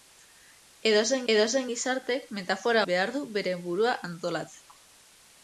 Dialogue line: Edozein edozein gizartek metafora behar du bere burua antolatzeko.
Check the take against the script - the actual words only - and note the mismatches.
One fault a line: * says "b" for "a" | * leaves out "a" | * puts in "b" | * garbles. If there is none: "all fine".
all fine